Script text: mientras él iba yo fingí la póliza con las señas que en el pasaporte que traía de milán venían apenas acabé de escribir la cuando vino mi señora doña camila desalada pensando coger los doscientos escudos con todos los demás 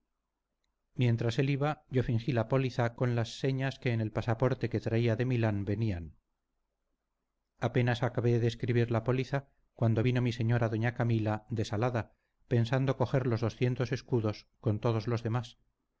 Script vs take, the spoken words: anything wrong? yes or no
yes